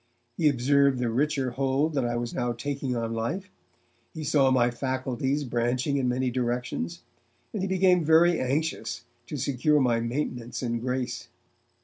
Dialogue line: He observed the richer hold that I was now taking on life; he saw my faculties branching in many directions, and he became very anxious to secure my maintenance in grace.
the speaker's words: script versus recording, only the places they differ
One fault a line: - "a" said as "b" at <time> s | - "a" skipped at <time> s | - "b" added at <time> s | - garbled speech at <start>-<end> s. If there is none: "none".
none